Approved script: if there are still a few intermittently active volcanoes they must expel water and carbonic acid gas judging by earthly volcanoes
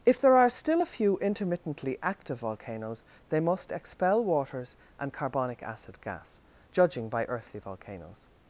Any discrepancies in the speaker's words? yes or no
yes